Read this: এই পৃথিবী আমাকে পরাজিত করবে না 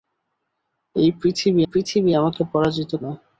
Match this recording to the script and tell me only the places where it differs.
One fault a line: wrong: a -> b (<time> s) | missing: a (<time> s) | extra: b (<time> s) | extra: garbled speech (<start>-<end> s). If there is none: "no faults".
extra: পৃথিবী (1.7 s)
missing: করবে (2.9 s)